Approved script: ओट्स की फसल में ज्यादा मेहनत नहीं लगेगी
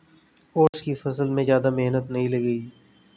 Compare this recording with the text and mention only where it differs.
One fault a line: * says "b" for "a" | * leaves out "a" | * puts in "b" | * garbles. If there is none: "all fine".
all fine